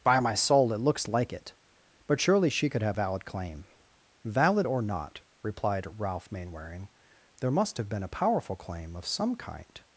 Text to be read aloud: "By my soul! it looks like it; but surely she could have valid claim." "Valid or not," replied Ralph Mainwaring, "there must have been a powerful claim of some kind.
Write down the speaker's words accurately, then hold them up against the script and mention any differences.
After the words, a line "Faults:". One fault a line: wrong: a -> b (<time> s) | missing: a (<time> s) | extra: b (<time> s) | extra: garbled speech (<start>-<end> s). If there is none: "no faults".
"By my soul! it looks like it; but surely she could have valid claim." "Valid or not," replied Ralph Mainwaring, "there must have been a powerful claim of some kind.
Faults:
no faults